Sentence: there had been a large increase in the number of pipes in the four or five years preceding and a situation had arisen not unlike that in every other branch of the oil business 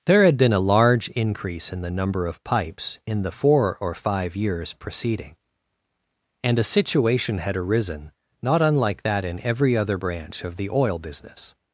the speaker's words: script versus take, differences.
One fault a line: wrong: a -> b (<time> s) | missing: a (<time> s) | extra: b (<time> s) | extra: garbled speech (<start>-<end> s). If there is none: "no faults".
no faults